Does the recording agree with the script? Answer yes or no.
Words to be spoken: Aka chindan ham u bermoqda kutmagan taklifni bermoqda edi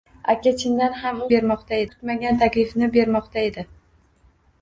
yes